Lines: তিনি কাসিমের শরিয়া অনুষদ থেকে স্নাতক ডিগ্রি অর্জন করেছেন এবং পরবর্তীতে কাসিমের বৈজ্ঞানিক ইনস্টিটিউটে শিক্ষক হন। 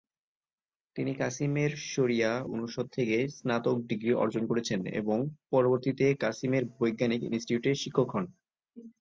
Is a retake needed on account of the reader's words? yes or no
no